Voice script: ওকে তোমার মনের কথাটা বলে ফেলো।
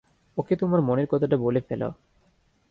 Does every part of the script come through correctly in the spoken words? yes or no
yes